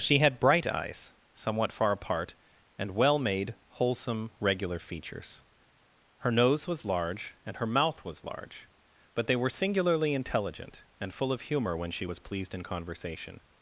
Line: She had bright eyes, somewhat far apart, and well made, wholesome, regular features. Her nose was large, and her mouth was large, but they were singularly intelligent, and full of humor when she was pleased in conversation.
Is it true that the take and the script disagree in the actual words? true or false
false